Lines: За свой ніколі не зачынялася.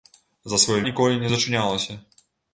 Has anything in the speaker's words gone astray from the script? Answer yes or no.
no